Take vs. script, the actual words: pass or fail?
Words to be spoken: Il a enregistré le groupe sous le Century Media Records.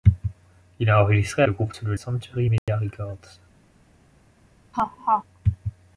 pass